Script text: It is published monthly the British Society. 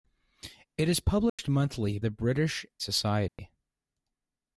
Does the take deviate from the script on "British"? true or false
false